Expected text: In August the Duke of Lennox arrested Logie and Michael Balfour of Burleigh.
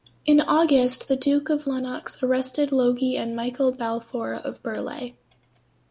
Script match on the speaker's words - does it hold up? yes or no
yes